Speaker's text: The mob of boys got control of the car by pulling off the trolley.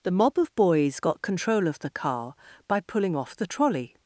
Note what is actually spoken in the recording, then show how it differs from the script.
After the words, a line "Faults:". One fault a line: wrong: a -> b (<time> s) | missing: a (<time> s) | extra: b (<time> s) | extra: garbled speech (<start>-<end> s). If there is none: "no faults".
The mob of boys got control of the car by pulling off the trolley.
Faults:
no faults